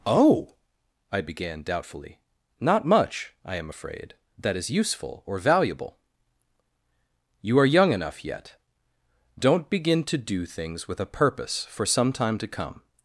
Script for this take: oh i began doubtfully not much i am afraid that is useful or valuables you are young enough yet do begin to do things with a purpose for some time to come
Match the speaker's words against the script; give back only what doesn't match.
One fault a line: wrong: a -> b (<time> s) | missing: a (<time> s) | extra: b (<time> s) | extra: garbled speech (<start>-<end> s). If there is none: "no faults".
wrong: valuables -> valuable (5.4 s)
wrong: do -> don't (9.4 s)